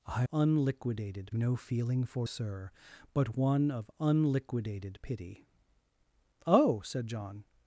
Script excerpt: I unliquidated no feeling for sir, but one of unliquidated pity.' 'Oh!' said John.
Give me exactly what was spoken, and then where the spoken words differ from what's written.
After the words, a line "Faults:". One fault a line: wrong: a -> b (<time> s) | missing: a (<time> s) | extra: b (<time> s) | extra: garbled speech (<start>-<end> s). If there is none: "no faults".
I unliquidated no feeling for sir, but one of unliquidated pity.' 'Oh!' said John.
Faults:
no faults